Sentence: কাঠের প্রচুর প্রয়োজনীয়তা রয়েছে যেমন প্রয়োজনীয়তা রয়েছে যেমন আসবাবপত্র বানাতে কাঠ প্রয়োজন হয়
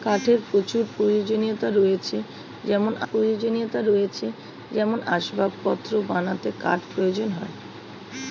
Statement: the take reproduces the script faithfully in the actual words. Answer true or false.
true